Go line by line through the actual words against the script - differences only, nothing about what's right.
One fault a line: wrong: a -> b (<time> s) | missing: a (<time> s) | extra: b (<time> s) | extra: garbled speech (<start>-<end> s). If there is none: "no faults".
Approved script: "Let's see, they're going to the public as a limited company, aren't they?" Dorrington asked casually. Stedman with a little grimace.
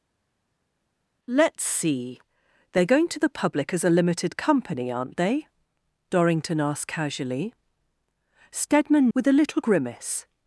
no faults